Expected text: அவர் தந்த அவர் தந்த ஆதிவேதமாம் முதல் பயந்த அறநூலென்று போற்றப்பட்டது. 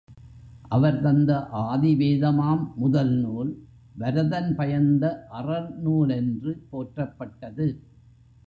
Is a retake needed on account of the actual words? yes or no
yes